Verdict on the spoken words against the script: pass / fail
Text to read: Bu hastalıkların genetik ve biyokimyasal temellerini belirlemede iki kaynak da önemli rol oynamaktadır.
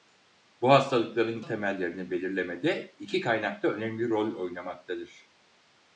fail